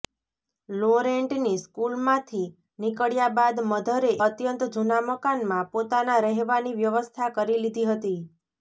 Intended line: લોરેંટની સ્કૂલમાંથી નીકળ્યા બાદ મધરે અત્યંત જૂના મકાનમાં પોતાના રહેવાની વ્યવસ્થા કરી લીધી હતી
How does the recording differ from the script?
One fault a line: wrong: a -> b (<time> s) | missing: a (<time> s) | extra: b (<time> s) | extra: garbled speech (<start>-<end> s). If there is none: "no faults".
no faults